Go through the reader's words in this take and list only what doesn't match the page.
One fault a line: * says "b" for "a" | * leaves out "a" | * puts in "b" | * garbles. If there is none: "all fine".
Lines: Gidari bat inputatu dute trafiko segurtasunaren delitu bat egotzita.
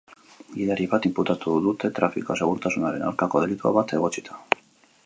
* puts in "aurkako"